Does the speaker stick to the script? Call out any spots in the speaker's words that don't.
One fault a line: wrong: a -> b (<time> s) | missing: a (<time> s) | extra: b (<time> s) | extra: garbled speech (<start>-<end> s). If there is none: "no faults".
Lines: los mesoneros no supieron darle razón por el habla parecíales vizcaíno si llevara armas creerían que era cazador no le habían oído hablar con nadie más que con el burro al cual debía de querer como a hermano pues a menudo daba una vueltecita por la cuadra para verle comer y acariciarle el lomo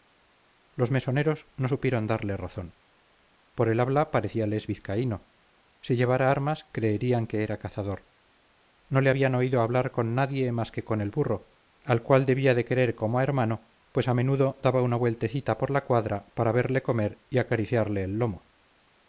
no faults